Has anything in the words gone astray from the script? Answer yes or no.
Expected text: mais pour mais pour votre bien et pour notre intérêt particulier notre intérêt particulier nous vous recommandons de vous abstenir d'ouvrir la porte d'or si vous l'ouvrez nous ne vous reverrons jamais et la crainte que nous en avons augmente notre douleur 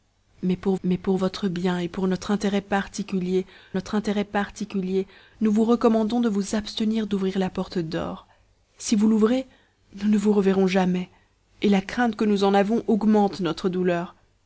no